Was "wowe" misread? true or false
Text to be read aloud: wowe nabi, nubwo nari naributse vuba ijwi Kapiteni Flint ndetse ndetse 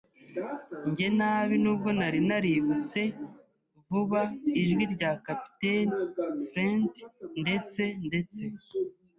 true